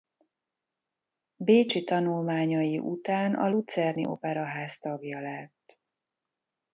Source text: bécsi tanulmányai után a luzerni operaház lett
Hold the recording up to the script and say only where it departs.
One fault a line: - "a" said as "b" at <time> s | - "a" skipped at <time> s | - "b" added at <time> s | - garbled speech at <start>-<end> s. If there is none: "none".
- "tagja" added at 4.8 s